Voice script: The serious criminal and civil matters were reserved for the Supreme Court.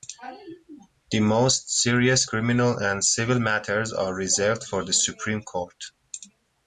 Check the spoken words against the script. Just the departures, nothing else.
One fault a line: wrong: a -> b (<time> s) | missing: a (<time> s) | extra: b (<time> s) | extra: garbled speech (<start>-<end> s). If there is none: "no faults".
extra: most (1.2 s)
wrong: were -> are (3.9 s)